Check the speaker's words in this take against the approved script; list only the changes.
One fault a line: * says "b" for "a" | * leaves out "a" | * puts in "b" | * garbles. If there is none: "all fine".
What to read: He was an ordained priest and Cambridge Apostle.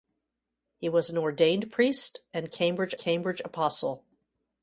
* puts in "Cambridge"